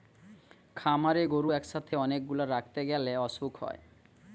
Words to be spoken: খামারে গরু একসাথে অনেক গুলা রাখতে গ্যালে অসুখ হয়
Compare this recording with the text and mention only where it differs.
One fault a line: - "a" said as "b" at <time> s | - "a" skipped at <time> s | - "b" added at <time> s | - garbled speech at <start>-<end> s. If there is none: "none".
none